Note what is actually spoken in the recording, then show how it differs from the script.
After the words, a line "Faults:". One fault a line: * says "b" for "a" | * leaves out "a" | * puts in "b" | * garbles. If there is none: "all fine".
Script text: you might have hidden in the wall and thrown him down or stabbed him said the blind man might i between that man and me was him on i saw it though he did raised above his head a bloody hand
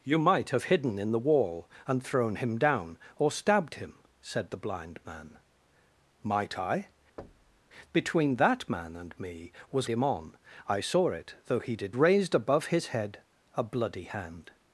you might have hidden in the wall and thrown him down or stabbed him said the blind man might i between that man and me was him on i saw it though he did raised above his head a bloody hand
Faults:
all fine